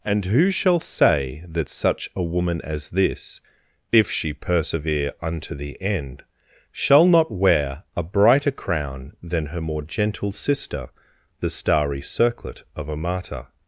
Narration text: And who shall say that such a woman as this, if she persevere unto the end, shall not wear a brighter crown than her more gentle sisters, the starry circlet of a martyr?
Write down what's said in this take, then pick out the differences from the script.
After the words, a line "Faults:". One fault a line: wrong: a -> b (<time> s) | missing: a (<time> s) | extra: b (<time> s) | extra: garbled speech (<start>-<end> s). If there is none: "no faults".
And who shall say that such a woman as this, if she persevere unto the end, shall not wear a brighter crown than her more gentle sister, the starry circlet of a martyr?
Faults:
wrong: sisters -> sister (10.3 s)